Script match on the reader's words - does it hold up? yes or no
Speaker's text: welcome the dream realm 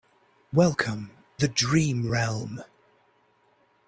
yes